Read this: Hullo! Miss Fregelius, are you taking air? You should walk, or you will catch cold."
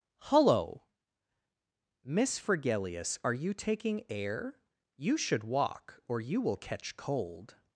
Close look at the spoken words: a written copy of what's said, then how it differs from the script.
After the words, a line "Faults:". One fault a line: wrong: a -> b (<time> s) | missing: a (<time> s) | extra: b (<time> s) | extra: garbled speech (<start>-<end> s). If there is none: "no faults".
Hullo! Miss Fregelius, are you taking air? You should walk, or you will catch cold."
Faults:
no faults